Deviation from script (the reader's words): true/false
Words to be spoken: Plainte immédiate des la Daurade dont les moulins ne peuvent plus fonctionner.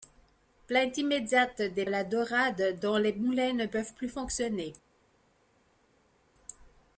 false